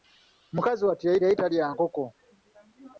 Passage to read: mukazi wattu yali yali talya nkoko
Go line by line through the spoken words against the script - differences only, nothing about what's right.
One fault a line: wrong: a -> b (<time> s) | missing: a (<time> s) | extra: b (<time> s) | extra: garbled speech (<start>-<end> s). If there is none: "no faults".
no faults